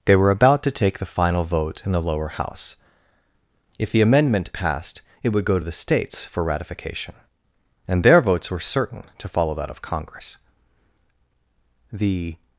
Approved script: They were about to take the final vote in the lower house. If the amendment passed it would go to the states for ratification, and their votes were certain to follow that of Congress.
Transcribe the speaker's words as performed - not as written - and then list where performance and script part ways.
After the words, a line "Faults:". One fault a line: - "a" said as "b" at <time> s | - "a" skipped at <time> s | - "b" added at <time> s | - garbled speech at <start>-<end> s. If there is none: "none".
They were about to take the final vote in the lower house. If the amendment passed it would go to the states for ratification, and their votes were certain to follow that of Congress. The
Faults:
- "The" added at 11.9 s